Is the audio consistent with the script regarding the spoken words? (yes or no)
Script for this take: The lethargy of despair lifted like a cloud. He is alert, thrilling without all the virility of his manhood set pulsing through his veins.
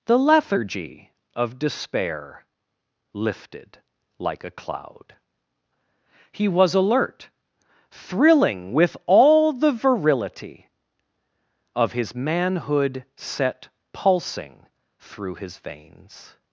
no